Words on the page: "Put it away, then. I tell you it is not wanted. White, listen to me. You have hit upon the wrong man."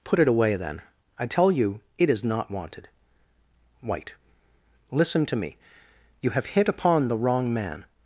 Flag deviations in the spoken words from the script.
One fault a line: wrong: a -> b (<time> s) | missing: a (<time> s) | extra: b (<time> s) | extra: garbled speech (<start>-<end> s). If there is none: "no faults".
no faults